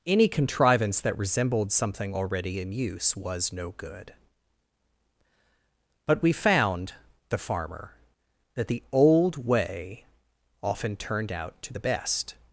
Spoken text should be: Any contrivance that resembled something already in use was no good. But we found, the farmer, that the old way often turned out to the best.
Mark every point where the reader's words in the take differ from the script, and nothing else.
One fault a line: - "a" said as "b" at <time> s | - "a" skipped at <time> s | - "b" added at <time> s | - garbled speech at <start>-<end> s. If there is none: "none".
none